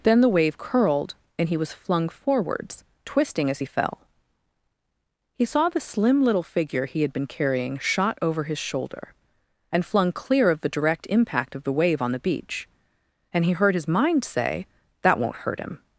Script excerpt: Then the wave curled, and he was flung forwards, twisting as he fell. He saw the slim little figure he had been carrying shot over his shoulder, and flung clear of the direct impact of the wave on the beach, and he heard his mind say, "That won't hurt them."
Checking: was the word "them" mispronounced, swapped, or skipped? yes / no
yes